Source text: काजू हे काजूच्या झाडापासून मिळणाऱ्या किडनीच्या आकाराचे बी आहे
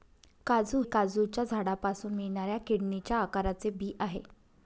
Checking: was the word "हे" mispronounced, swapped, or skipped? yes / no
yes